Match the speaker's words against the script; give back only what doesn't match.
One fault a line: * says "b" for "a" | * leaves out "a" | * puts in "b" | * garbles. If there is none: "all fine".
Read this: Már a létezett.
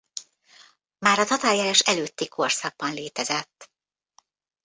* puts in "tatárjárás előtti korszakban"